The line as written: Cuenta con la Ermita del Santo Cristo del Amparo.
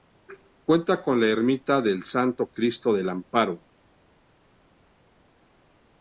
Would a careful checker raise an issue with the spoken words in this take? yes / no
no